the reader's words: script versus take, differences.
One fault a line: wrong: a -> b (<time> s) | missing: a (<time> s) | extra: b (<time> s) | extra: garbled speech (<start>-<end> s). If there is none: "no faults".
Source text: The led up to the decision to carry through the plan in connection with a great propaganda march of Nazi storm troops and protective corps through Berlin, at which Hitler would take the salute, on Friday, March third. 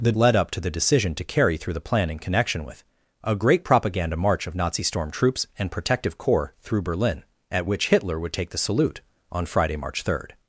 no faults